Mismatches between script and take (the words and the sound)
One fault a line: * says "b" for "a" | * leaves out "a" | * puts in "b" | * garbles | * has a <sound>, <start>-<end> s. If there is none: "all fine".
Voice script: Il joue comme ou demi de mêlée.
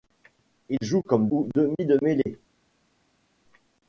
all fine